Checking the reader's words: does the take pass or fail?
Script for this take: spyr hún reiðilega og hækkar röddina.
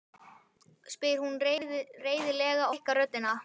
fail